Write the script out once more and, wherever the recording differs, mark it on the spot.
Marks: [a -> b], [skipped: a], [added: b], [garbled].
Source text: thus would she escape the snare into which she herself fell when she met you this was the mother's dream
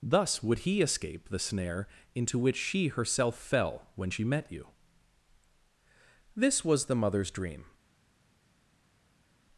thus would [she -> he] escape the snare into which she herself fell when she met you this was the mother's dream